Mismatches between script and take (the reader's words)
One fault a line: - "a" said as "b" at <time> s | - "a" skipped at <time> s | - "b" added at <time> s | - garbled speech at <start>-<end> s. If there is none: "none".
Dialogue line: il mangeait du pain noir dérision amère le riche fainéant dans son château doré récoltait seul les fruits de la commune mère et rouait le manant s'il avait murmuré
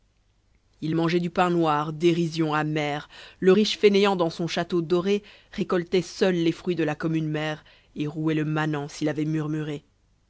none